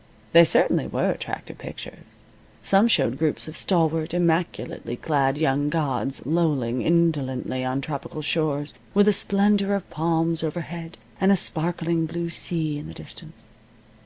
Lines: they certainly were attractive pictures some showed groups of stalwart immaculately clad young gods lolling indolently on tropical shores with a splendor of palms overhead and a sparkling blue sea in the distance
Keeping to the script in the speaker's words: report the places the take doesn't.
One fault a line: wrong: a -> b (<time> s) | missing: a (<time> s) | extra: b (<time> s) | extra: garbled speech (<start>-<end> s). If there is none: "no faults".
no faults